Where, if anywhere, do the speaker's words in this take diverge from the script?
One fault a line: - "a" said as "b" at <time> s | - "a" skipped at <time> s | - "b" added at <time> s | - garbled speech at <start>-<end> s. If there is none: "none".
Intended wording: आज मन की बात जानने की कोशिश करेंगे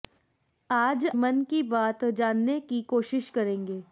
none